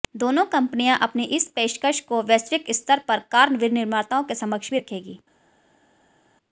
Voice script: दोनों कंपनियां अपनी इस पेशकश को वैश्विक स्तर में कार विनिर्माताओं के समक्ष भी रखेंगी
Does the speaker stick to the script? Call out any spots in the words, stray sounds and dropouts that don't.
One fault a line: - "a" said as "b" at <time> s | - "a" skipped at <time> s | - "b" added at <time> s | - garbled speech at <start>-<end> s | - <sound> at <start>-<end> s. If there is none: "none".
- "में" said as "पर" at 3.1 s